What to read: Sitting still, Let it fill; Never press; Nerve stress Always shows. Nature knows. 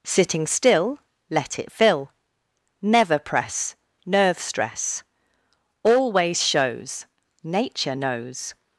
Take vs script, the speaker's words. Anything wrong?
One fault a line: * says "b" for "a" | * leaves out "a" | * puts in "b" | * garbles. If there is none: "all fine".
all fine